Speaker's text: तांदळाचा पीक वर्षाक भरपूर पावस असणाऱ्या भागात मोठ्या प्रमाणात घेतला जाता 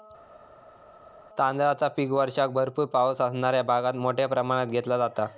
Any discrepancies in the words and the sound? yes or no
no